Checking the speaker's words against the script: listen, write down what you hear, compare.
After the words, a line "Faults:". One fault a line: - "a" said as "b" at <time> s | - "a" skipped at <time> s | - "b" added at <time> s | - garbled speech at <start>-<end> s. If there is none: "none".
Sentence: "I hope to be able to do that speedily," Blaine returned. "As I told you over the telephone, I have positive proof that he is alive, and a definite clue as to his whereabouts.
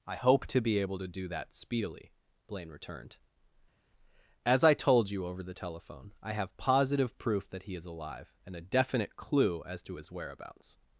"I hope to be able to do that speedily," Blaine returned. "As I told you over the telephone, I have positive proof that he is alive, and a definite clue as to his whereabouts.
Faults:
none